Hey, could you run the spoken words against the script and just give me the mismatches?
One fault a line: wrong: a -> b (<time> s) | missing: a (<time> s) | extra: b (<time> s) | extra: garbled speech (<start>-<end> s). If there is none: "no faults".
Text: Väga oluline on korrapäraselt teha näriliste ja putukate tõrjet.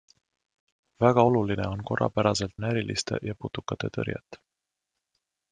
missing: teha (2.6 s)